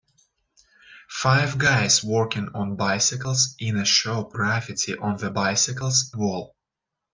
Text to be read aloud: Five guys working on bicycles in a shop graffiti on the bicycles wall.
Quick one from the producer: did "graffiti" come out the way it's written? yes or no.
yes